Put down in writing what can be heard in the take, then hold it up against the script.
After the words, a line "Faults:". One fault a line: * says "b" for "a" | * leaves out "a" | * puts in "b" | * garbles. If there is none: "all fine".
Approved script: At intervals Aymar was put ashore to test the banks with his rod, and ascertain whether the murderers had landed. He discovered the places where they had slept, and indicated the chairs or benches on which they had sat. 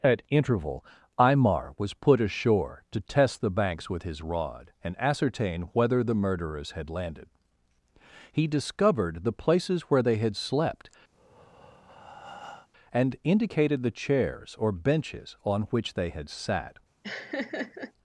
At interval Aymar was put ashore to test the banks with his rod, and ascertain whether the murderers had landed. He discovered the places where they had slept, and indicated the chairs or benches on which they had sat.
Faults:
* says "interval" for "intervals"